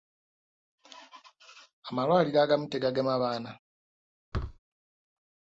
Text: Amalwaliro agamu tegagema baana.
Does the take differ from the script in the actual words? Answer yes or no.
no